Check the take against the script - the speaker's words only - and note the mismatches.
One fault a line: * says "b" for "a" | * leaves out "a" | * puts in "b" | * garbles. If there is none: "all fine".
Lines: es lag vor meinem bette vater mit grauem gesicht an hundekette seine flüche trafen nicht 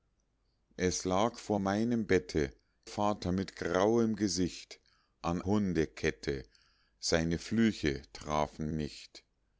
all fine